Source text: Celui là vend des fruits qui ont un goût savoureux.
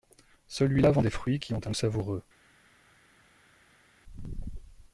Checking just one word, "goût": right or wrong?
wrong